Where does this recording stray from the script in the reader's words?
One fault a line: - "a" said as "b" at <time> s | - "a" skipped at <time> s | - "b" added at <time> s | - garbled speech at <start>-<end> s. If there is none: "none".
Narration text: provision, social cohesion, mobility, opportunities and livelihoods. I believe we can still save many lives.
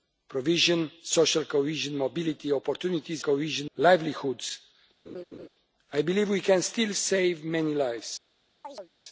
- "and" said as "cohesion" at 3.2 s